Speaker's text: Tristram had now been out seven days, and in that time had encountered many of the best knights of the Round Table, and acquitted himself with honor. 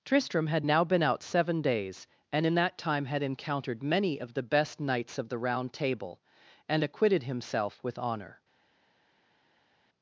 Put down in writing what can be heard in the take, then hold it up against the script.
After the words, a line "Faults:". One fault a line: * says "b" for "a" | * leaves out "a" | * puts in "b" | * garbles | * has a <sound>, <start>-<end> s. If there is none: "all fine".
Tristram had now been out seven days, and in that time had encountered many of the best knights of the Round Table, and acquitted himself with honor.
Faults:
all fine